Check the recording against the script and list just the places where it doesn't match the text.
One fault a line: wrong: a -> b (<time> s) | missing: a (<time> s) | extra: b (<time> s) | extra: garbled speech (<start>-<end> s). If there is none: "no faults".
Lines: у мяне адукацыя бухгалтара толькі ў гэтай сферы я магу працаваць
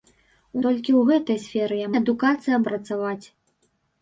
missing: мяне адукацыя бухгалтара (0.6 s)
wrong: магу -> адукацыя (2.0 s)